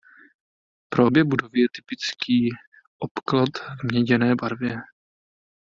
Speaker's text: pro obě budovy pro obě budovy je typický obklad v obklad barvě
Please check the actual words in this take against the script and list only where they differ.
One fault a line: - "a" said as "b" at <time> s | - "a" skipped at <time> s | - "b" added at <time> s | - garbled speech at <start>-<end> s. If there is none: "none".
- "pro obě budovy" skipped at 1.6 s
- "obklad" said as "měděné" at 3.8 s